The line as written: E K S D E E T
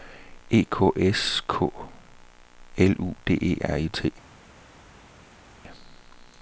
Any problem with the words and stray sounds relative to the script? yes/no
yes